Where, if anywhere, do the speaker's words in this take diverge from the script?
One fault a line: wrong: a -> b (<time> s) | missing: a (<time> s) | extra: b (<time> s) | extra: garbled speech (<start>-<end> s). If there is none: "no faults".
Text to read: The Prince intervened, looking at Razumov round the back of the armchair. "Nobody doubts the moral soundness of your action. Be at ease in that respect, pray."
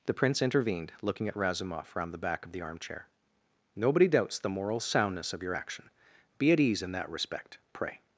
no faults